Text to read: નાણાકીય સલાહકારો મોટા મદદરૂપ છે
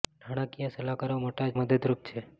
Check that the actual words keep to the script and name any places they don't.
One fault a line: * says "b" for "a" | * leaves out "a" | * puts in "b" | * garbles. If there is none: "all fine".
all fine